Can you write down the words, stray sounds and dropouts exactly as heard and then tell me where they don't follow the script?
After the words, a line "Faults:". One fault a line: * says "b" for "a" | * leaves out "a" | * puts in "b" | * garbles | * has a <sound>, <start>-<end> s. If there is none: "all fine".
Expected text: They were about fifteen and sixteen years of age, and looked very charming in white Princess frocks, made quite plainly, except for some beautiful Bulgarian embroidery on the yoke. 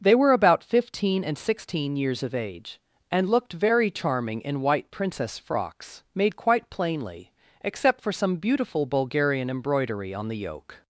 They were about fifteen and sixteen years of age, and looked very charming in white Princess frocks, made quite plainly, except for some beautiful Bulgarian embroidery on the yoke.
Faults:
all fine